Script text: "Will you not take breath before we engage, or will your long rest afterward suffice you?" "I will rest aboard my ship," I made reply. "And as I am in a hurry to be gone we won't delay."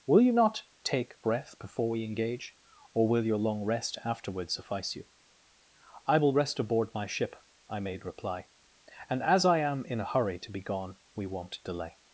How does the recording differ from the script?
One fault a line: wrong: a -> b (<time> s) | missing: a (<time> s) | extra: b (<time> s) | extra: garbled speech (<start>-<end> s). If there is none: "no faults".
no faults